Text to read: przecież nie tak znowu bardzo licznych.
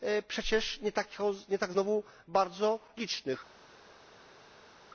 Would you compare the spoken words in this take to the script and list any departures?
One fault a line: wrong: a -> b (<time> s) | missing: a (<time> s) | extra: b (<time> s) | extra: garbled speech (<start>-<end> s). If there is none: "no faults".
no faults